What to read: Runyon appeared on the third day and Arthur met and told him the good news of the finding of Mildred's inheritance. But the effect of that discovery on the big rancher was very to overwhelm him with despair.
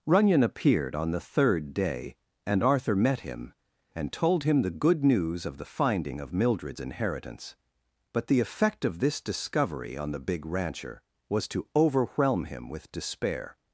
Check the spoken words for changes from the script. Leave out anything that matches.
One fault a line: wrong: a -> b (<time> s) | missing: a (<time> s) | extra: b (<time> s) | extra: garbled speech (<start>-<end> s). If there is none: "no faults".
extra: him (3.2 s)
wrong: that -> this (9.0 s)
missing: very (11.5 s)